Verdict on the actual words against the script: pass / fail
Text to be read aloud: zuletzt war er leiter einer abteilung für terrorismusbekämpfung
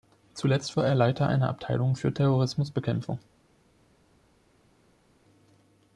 pass